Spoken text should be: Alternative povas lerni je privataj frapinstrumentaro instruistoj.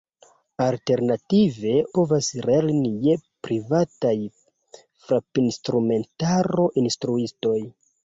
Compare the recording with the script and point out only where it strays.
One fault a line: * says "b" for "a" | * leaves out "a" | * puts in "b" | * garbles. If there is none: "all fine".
all fine